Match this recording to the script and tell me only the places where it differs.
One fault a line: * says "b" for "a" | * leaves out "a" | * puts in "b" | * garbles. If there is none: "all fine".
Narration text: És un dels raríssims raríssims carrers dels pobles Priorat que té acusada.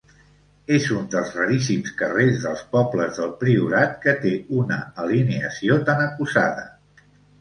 * leaves out "raríssims"
* puts in "del"
* puts in "una alineació tan"